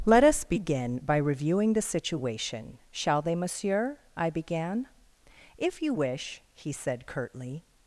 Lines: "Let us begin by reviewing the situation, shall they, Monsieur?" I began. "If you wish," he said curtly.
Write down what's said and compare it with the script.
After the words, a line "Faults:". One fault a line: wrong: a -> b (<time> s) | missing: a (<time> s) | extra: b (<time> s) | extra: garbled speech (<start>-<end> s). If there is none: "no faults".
"Let us begin by reviewing the situation, shall they, Monsieur?" I began. "If you wish," he said curtly.
Faults:
no faults